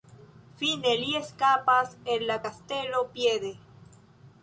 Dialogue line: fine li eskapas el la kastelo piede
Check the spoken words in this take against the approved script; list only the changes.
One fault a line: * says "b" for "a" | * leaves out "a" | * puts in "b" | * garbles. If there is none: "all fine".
all fine